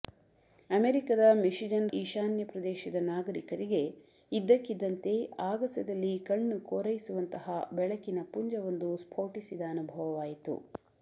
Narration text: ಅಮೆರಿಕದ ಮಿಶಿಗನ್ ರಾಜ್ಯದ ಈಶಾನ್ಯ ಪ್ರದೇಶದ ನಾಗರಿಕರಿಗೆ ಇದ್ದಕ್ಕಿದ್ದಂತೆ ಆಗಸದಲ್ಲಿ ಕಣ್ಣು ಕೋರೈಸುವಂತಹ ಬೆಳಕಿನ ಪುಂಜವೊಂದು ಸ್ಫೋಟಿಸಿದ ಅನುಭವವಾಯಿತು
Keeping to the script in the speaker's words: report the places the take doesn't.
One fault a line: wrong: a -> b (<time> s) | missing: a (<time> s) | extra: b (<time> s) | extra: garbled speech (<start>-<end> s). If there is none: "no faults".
missing: ರಾಜ್ಯದ (1.9 s)